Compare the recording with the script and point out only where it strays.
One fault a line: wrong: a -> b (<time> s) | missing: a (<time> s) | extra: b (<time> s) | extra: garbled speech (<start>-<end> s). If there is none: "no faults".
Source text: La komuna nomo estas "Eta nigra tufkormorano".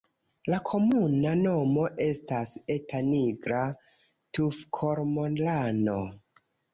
no faults